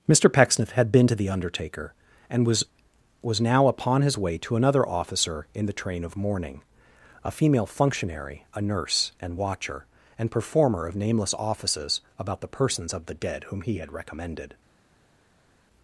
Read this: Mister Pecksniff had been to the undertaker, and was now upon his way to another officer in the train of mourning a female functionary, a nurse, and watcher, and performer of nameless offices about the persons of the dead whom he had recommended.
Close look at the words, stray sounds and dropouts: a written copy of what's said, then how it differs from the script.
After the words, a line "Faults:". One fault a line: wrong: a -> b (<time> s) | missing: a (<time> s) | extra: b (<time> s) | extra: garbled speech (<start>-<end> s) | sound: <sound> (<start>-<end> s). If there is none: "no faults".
Mister Pecksniff had been to the undertaker, and was was now upon his way to another officer in the train of mourning a female functionary, a nurse, and watcher, and performer of nameless offices about the persons of the dead whom he had recommended.
Faults:
extra: was (3.2 s)